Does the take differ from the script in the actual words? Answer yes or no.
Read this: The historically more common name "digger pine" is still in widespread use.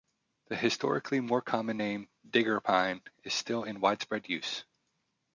no